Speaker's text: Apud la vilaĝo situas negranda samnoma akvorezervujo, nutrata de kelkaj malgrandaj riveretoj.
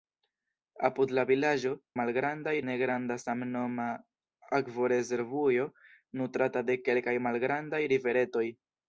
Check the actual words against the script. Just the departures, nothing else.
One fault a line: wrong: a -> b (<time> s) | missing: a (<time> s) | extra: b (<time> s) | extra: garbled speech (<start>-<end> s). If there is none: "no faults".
wrong: situas -> malgrandaj (2.0 s)